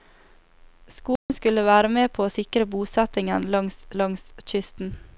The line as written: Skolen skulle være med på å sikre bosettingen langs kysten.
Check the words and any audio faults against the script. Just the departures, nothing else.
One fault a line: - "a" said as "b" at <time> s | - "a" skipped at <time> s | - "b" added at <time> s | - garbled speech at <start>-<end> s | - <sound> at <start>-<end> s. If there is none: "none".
- dropout at 1.2-1.3 s
- "langs" added at 4.0 s